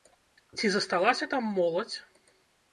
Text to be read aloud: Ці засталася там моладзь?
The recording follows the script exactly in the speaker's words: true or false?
true